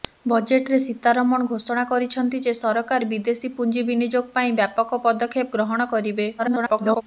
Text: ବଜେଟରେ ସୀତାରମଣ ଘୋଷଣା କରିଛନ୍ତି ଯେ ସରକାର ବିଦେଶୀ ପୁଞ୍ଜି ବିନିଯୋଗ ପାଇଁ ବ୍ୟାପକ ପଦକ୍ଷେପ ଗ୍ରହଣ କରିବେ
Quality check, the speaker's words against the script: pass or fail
fail